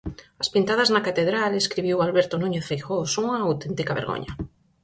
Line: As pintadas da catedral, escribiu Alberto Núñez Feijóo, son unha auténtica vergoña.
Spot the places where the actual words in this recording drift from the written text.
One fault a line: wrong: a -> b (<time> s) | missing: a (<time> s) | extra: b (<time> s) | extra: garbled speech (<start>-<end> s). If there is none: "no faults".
wrong: da -> na (0.9 s)